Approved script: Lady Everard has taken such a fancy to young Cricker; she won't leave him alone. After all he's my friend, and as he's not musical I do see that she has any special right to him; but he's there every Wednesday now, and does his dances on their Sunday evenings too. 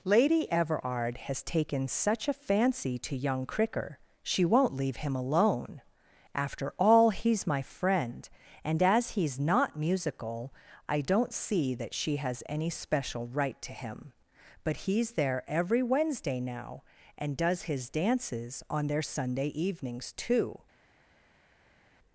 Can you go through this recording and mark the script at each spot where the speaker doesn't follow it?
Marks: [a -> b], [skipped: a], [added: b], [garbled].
Lady Everard has taken such a fancy to young Cricker; she won't leave him alone. After all he's my friend, and as he's not musical I [do -> don't] see that she has any special right to him; but he's there every Wednesday now, and does his dances on their Sunday evenings too.